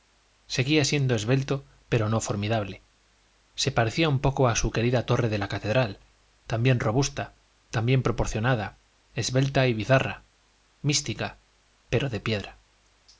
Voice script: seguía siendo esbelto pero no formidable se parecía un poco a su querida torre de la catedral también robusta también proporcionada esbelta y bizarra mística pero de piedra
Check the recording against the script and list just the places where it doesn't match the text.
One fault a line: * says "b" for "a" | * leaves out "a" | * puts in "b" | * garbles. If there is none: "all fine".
all fine